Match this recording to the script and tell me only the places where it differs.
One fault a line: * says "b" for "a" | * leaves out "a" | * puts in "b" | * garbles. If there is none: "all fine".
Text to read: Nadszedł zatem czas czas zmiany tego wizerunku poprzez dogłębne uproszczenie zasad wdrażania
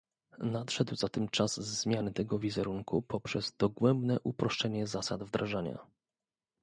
* leaves out "czas"